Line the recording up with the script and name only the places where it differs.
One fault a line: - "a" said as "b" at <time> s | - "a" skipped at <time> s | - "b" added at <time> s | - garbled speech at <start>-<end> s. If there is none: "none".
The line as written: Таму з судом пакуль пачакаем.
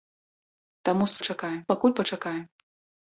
- "судом" said as "пачакаем" at 1.2 s